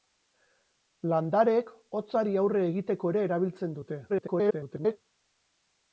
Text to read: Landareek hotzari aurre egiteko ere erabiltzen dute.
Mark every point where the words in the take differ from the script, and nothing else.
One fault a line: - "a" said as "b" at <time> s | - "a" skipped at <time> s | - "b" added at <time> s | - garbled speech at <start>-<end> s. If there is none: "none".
- garbled speech at 4.1-5.0 s